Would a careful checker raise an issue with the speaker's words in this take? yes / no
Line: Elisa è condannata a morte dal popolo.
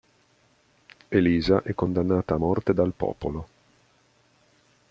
no